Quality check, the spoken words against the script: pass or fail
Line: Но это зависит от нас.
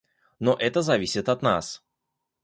pass